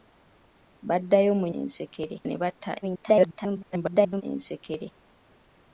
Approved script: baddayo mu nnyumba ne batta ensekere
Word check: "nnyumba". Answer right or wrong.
wrong